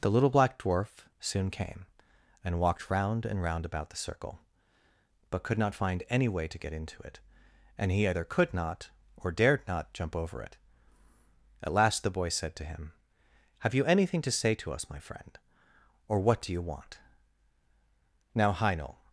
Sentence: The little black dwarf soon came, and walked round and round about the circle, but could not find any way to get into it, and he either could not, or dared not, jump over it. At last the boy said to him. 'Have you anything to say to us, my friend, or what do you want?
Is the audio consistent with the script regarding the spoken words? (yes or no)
no